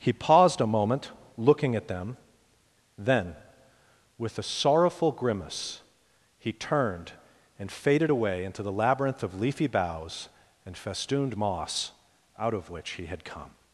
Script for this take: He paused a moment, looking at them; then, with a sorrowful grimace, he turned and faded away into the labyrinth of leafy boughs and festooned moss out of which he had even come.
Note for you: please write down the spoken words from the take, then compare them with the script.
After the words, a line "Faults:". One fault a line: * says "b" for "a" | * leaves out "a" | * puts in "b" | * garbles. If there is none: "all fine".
He paused a moment, looking at them; then, with a sorrowful grimace, he turned and faded away into the labyrinth of leafy boughs and festooned moss out of which he had come.
Faults:
* leaves out "even"